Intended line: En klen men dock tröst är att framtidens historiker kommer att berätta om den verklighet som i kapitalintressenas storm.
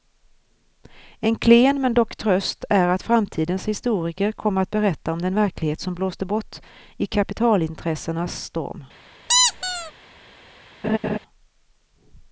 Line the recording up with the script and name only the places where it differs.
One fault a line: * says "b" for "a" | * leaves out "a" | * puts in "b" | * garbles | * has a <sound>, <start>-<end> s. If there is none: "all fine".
* puts in "blåste bort"
* has a squeak, 9.3-9.9 s
* has a laugh, 10.8-11.2 s